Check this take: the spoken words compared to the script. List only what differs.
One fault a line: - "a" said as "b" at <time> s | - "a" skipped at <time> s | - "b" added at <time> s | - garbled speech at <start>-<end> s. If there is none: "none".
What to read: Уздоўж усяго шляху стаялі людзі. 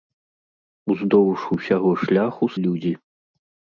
- "стаялі" skipped at 2.5 s